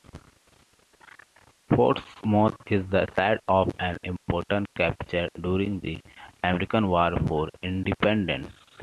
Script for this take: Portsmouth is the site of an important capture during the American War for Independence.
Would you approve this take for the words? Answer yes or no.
yes